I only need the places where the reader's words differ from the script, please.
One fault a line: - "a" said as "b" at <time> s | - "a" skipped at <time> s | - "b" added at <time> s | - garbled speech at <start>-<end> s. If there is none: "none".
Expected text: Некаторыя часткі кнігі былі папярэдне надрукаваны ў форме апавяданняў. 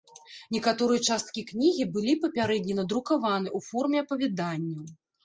none